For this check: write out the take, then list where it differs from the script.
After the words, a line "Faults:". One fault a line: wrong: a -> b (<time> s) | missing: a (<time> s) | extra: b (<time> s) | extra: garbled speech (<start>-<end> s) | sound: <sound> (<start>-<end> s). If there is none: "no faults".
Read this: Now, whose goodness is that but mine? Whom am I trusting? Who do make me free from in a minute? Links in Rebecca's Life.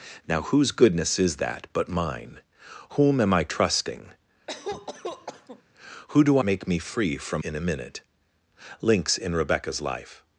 Now, whose goodness is that but mine? Whom am I trusting? Who do make me free from in a minute? Links in Rebecca's Life.
Faults:
sound: cough (4.5-5.6 s)